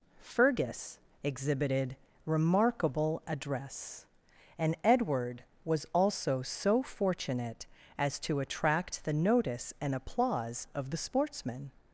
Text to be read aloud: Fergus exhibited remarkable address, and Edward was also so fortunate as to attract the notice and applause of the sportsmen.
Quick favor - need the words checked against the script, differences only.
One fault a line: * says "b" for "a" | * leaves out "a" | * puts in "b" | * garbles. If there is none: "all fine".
all fine